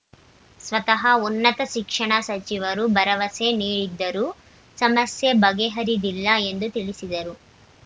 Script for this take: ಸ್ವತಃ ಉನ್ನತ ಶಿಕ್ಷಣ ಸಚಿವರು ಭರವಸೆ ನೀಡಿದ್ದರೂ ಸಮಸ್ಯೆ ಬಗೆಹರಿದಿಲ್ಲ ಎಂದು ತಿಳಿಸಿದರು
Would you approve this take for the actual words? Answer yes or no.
yes